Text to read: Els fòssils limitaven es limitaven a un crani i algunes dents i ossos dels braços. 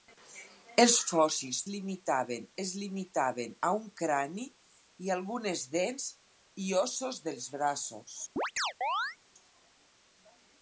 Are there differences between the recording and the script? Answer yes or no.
no